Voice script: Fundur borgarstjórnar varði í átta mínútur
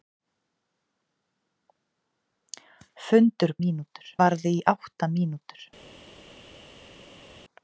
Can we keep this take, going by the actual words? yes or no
no